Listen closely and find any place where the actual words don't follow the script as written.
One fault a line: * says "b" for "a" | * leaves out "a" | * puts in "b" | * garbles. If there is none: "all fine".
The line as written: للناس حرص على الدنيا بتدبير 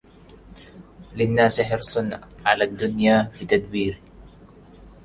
all fine